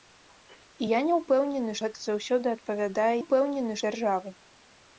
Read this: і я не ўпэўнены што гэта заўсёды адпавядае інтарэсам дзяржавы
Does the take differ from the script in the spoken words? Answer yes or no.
yes